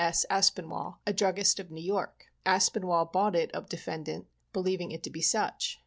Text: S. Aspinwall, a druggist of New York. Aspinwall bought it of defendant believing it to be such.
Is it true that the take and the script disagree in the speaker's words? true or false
false